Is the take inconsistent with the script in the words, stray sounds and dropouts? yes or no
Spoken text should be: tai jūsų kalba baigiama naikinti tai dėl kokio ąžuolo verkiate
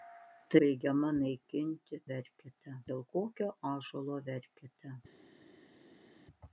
yes